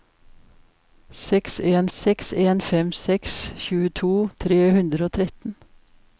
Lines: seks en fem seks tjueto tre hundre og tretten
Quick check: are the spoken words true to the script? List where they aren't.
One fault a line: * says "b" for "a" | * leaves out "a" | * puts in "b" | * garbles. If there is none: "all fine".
* puts in "seks en"